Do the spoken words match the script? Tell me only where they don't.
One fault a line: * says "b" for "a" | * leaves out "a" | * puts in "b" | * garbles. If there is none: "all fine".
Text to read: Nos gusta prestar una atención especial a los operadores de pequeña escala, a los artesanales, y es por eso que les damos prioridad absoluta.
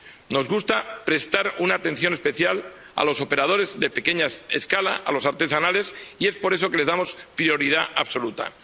all fine